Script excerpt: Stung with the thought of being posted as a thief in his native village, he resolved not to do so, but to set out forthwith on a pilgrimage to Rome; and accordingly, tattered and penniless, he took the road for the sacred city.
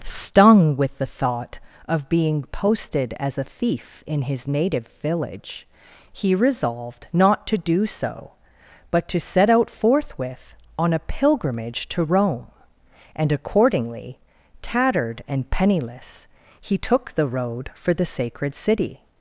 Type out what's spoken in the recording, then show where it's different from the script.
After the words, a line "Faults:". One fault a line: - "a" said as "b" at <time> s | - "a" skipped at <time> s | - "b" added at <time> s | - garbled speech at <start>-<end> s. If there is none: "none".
Stung with the thought of being posted as a thief in his native village, he resolved not to do so, but to set out forthwith on a pilgrimage to Rome; and accordingly, tattered and penniless, he took the road for the sacred city.
Faults:
none